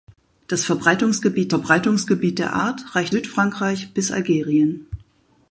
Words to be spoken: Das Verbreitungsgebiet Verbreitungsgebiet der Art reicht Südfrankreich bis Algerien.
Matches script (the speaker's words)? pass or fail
pass